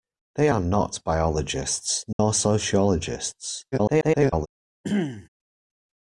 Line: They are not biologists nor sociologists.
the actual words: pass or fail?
fail